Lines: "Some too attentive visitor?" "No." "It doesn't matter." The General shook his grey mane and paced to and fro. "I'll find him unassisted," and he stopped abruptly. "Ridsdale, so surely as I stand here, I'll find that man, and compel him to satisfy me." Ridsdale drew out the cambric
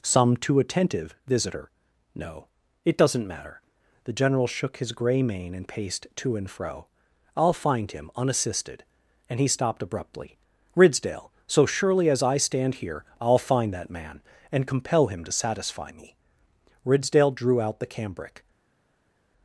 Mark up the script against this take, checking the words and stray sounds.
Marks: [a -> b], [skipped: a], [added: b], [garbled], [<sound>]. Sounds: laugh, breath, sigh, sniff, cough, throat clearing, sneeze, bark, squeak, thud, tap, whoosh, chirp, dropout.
"Some too attentive visitor?" "No." "It doesn't matter." The General shook his grey mane and paced to and fro. "I'll find him unassisted," and he stopped abruptly. "Ridsdale, so surely as I stand here, I'll find that man, and compel him to satisfy me." Ridsdale drew out the cambric